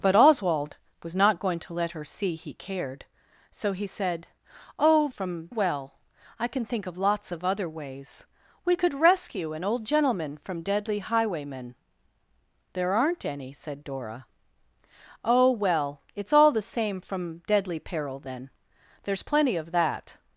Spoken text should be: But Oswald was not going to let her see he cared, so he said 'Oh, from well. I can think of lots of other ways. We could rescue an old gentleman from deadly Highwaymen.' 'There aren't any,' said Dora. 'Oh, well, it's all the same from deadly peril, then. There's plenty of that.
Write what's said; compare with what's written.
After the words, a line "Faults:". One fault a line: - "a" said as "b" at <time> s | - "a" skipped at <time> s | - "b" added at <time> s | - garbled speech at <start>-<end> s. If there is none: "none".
But Oswald was not going to let her see he cared, so he said 'Oh, from well. I can think of lots of other ways. We could rescue an old gentleman from deadly Highwaymen.' 'There aren't any,' said Dora. 'Oh, well, it's all the same from deadly peril, then. There's plenty of that.
Faults:
none